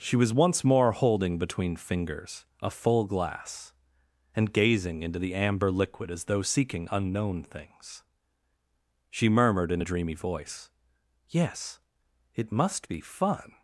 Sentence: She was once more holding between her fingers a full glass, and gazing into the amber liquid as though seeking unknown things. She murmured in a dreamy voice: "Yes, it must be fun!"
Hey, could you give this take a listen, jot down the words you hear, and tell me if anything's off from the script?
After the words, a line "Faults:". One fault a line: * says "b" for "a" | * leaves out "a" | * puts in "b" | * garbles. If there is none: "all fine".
She was once more holding between fingers a full glass, and gazing into the amber liquid as though seeking unknown things. She murmured in a dreamy voice: "Yes, it must be fun!"
Faults:
* leaves out "her"